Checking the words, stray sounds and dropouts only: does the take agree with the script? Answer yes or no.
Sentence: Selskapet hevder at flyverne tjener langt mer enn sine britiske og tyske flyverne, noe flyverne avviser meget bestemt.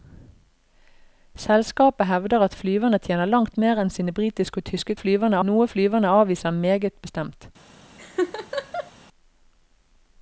no